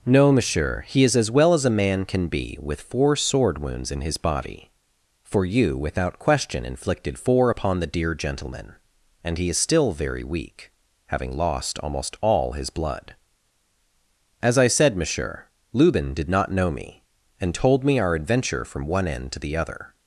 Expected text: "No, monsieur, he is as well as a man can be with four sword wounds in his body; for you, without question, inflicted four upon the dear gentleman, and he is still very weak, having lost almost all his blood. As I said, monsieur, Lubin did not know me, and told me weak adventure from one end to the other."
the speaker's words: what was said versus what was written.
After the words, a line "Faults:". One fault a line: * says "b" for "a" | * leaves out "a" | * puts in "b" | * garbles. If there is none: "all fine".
"No, monsieur, he is as well as a man can be with four sword wounds in his body; for you, without question, inflicted four upon the dear gentleman, and he is still very weak, having lost almost all his blood. As I said, monsieur, Lubin did not know me, and told me our adventure from one end to the other."
Faults:
* says "our" for "weak"